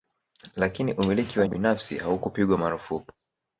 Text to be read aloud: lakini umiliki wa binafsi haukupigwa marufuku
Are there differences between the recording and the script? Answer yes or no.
no